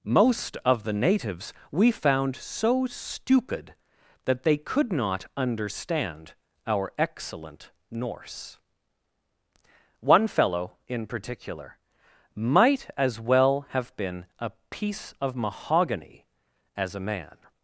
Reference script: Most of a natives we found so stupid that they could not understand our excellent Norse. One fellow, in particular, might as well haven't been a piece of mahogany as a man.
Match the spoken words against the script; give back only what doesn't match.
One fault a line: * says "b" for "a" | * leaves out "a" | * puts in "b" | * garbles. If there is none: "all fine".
* says "the" for "a"
* says "have" for "haven't"